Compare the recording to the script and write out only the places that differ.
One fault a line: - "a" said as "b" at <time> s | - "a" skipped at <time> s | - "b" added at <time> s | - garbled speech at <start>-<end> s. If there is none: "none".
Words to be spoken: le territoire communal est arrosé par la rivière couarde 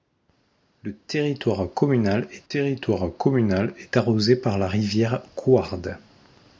- "territoire communal est" added at 2.4 s